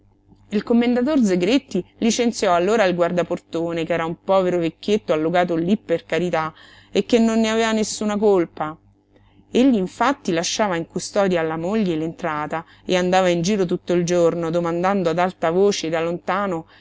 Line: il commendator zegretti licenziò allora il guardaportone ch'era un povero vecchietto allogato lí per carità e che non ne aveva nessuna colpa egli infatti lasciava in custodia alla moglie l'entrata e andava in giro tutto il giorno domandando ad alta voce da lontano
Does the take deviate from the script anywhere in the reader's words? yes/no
no